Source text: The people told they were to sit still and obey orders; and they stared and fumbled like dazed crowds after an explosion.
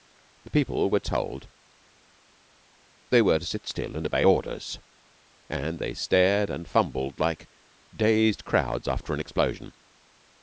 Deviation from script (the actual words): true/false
true